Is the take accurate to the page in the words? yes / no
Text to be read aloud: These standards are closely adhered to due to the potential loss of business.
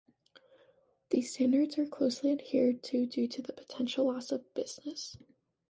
yes